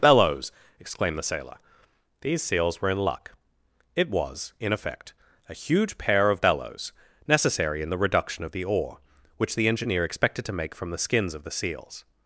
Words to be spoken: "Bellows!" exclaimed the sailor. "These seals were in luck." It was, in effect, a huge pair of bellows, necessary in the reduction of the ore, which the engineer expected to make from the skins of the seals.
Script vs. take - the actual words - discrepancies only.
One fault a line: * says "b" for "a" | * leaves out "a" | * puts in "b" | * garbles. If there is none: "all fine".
all fine